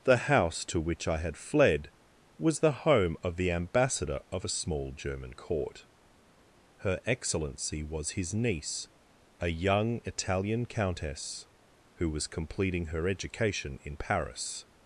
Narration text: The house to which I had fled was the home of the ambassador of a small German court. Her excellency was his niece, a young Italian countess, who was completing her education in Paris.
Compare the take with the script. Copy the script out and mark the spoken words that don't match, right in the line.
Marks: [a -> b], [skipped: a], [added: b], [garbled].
The house to which I had fled was the home of the ambassador of a small German court. Her excellency was his niece, a young Italian countess, who was completing her education in Paris.